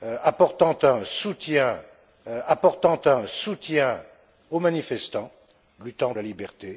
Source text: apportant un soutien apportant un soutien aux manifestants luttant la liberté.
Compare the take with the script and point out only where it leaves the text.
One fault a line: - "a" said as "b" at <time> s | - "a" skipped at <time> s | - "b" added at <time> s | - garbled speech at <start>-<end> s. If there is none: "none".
none